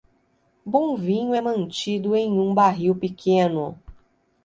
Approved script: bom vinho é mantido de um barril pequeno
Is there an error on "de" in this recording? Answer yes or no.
yes